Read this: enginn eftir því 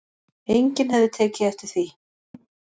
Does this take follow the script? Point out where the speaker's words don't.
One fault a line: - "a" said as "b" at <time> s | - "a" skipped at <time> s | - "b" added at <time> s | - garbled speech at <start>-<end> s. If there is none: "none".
- "hefði tekið" added at 0.9 s